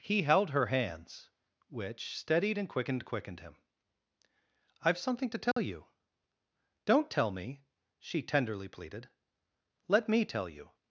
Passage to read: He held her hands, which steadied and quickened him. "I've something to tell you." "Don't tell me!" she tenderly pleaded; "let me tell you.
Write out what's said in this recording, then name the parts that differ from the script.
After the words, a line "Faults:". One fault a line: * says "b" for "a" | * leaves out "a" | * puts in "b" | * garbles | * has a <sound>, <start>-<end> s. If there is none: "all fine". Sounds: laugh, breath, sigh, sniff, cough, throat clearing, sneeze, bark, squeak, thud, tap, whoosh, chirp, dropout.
He held her hands, which steadied and quickened quickened him. "I've something to tell you." "Don't tell me!" she tenderly pleaded; "let me tell you.
Faults:
* puts in "quickened"
* has a dropout, 5.5-5.6 s